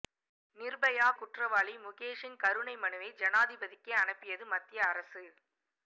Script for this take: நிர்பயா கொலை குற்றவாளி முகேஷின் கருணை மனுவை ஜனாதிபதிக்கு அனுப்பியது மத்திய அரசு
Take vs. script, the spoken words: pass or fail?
fail